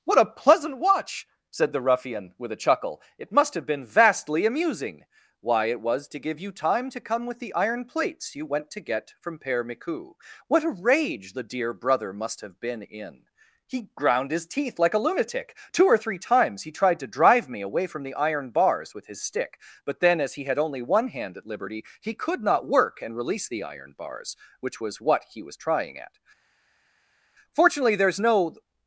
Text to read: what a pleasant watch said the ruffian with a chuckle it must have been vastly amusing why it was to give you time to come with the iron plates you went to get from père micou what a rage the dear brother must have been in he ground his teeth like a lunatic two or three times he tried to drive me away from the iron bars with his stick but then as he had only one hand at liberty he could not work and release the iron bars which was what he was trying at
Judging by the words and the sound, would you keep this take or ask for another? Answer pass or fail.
fail